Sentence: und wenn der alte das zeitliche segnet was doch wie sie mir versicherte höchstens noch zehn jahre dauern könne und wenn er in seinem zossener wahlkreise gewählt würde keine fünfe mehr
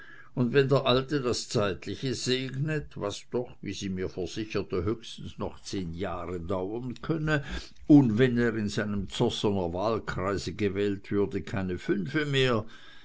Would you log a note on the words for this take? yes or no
no